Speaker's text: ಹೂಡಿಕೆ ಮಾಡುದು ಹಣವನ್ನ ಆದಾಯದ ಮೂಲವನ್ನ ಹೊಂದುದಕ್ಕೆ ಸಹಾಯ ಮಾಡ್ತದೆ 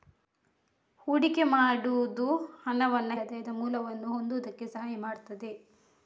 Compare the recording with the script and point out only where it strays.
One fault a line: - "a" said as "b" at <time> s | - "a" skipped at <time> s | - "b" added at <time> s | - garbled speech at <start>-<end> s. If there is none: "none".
none